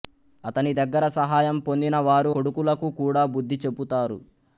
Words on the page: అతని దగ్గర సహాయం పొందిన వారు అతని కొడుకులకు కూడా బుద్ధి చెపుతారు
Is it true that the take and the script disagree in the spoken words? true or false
true